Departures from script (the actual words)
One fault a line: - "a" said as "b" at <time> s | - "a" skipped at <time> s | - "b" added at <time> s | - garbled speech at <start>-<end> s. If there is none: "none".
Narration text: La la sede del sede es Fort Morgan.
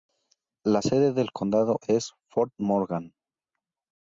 - "la" skipped at 0.8 s
- "sede" said as "condado" at 1.3 s